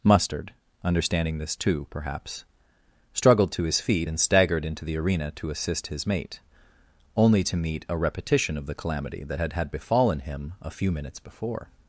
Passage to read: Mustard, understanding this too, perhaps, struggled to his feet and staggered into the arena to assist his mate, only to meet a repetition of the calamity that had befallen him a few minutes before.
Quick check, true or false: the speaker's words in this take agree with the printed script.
false